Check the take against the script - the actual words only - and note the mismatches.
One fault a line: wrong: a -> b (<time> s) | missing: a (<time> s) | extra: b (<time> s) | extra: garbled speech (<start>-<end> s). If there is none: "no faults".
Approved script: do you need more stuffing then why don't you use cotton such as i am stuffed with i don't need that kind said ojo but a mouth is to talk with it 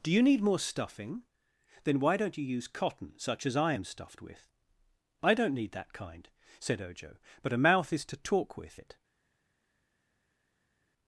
no faults